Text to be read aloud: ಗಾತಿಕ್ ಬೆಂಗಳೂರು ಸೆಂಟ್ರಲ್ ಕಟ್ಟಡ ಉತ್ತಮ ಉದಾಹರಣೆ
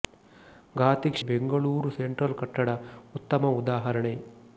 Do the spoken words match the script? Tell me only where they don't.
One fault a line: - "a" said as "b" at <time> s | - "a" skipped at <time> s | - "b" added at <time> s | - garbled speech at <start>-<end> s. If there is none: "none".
none